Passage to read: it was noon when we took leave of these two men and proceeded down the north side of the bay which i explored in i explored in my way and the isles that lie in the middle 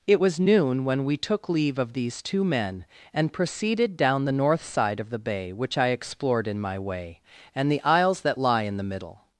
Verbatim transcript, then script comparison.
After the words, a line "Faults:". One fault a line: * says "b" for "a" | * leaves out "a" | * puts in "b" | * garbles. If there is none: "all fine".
it was noon when we took leave of these two men and proceeded down the north side of the bay which i explored in my way and the isles that lie in the middle
Faults:
* leaves out "i explored in"